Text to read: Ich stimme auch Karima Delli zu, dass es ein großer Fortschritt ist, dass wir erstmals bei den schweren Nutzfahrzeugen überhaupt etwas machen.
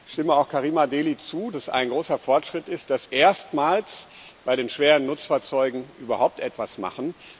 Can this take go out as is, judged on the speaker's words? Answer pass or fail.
fail